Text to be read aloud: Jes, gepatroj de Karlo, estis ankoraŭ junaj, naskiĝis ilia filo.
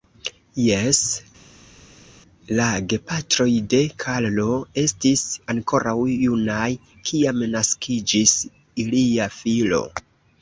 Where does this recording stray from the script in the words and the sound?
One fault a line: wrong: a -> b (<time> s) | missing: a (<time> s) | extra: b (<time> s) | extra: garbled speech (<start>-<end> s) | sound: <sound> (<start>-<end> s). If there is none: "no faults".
extra: la (2.6 s)
extra: kiam (7.1 s)